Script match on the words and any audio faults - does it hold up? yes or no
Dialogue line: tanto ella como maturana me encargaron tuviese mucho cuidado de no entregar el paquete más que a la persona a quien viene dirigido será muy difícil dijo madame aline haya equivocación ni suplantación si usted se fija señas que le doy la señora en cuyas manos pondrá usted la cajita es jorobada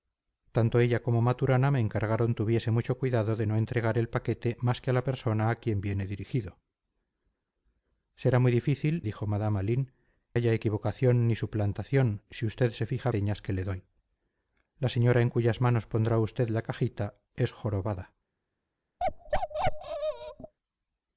no